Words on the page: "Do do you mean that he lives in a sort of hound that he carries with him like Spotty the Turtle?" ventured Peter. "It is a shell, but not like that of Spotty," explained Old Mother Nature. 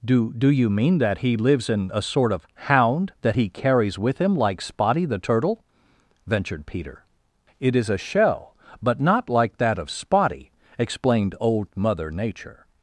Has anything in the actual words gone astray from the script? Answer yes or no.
no